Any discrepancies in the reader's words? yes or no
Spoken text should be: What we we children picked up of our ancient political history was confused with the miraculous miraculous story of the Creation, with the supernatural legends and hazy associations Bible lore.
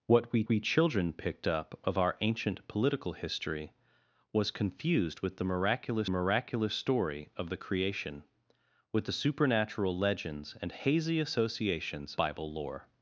no